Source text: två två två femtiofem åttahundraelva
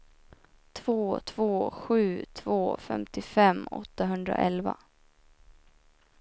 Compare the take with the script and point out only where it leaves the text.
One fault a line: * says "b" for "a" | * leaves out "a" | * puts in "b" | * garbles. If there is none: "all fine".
* puts in "sju"